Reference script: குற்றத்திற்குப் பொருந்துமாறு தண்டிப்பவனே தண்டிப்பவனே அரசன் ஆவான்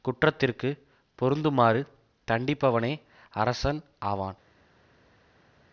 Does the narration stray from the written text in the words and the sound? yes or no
yes